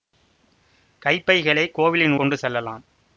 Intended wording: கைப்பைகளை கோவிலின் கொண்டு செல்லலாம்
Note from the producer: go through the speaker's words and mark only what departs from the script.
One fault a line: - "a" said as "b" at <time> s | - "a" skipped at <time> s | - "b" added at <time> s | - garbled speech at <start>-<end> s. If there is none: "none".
none